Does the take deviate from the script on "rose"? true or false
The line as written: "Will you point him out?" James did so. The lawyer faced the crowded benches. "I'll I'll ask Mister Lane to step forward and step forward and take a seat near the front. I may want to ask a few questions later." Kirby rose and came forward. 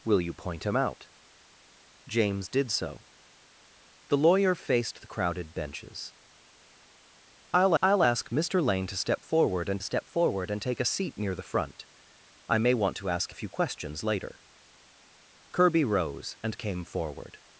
false